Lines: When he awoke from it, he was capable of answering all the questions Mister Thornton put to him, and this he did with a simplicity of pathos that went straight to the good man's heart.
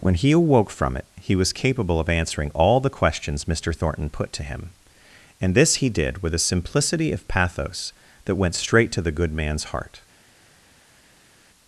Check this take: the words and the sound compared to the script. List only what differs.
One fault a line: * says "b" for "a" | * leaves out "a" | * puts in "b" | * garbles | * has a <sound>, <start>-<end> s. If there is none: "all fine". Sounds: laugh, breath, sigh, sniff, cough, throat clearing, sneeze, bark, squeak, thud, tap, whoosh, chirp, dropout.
all fine